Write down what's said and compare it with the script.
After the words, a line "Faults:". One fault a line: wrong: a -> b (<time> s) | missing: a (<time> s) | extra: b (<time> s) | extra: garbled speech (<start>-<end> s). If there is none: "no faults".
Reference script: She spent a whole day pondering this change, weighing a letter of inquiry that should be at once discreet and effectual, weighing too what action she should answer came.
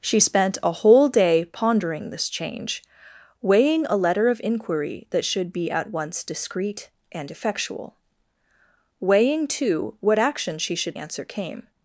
She spent a whole day pondering this change, weighing a letter of inquiry that should be at once discreet and effectual, weighing too what action she should answer came.
Faults:
no faults